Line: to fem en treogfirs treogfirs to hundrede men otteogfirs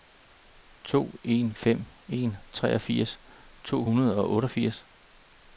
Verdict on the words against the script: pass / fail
fail